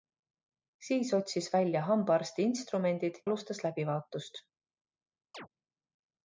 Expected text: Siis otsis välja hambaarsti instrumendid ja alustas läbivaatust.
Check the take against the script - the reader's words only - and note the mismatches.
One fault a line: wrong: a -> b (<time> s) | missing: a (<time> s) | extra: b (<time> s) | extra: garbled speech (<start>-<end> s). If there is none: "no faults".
missing: ja (3.2 s)